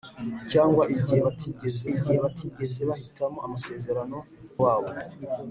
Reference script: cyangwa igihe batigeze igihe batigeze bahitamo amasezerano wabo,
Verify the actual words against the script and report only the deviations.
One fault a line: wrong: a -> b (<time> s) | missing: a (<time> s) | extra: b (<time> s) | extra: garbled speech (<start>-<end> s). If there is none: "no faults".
no faults